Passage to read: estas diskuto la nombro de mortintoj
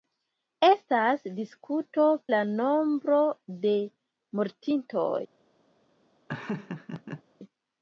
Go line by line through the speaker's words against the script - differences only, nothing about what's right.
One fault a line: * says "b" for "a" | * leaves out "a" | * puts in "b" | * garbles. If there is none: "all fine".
all fine